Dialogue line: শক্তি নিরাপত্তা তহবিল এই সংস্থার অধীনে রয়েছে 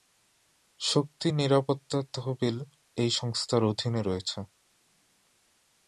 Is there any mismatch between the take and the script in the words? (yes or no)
no